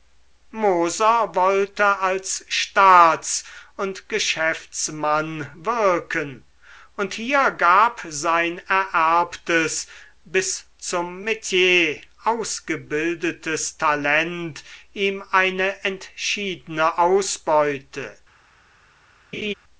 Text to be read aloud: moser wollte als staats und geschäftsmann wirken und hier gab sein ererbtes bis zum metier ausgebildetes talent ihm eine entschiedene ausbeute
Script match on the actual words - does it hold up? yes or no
yes